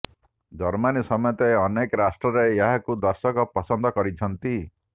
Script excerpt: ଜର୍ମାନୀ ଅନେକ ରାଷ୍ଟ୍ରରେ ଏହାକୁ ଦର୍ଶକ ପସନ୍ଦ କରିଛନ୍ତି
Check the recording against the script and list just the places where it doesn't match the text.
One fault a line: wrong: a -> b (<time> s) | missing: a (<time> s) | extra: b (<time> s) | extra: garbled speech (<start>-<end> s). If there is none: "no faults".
extra: ସମେତ (1.1 s)